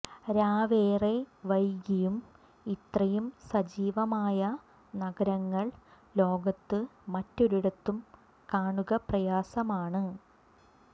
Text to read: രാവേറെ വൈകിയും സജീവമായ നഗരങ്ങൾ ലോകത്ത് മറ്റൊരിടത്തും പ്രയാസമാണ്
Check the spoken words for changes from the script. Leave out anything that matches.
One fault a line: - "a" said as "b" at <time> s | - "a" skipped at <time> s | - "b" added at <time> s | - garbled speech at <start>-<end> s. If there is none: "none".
- "ഇത്രയും" added at 2.6 s
- "കാണുക" added at 8.5 s